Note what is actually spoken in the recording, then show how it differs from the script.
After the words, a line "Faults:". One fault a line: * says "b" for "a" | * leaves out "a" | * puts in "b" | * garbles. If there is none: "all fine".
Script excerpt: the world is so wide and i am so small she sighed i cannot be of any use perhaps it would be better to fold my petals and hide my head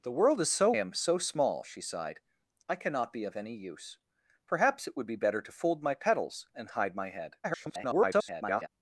the world is so am so small she sighed i cannot be of any use perhaps it would be better to fold my petals and hide my head [garbled]
Faults:
* leaves out "wide and i"
* garbles